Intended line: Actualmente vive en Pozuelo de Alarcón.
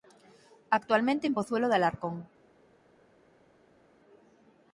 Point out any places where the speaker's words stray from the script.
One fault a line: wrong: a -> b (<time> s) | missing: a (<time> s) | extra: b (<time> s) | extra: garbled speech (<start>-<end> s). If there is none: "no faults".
missing: vive (1.3 s)